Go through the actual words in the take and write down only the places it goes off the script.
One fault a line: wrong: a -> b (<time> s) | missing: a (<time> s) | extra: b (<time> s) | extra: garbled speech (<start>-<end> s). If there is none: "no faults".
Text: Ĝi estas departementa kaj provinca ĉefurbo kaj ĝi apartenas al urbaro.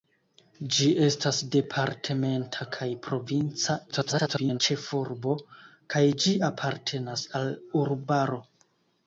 extra: garbled speech (3.9-4.6 s)